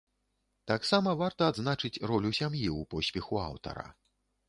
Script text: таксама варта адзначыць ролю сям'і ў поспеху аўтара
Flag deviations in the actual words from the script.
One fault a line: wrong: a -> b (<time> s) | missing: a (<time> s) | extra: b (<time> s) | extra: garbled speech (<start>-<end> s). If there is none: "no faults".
no faults